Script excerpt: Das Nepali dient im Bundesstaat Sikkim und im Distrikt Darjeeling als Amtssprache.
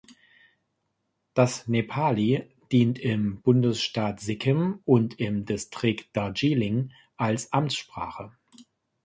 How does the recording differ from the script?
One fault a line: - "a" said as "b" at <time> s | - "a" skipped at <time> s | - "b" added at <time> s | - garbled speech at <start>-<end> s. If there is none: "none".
none